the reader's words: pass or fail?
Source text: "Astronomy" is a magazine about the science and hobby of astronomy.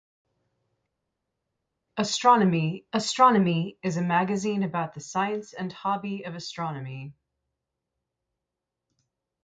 fail